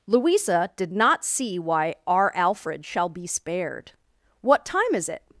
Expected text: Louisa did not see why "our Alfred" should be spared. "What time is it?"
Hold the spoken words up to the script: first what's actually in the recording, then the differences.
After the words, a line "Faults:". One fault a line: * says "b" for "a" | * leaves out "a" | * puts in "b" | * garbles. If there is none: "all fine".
Louisa did not see why "our Alfred" shall be spared. "What time is it?"
Faults:
* says "shall" for "should"